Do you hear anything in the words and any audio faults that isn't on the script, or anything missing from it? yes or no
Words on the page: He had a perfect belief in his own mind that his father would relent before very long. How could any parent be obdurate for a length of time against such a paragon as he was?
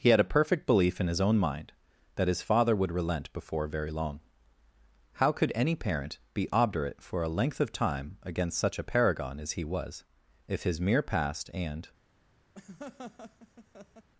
yes